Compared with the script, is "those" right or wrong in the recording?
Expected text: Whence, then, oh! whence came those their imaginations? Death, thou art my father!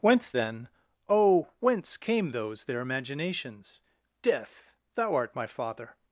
right